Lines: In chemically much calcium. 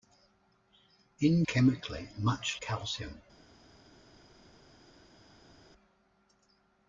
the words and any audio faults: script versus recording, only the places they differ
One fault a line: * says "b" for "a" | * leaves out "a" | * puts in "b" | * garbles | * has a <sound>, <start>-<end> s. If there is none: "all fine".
all fine